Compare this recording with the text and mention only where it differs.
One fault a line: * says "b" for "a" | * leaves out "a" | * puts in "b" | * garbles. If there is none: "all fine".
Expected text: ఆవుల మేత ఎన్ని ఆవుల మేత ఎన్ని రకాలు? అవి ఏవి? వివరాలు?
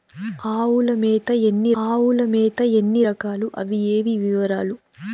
all fine